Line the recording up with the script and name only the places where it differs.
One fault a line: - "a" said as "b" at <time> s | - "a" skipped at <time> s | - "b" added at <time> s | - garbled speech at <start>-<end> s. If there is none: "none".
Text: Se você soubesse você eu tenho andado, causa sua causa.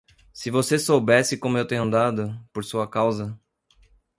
- "você" said as "como" at 1.4 s
- "causa" said as "por" at 2.5 s